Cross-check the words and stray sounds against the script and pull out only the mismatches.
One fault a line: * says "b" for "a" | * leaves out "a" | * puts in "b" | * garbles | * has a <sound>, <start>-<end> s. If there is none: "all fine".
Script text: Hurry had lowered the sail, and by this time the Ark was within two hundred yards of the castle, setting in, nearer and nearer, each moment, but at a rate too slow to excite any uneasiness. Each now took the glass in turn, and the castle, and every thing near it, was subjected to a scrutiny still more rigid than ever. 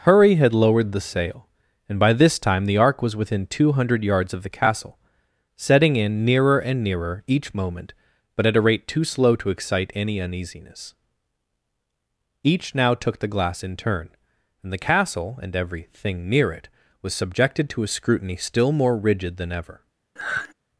* has a sigh, 20.2-20.5 s